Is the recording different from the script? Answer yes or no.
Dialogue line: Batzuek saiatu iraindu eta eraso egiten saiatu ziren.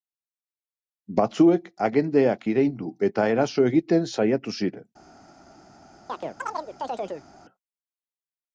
yes